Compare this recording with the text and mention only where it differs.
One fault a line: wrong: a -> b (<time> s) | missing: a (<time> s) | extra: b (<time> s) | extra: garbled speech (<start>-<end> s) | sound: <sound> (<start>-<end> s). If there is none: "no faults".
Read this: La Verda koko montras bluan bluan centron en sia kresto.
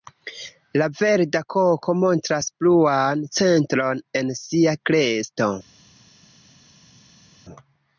missing: bluan (3.2 s)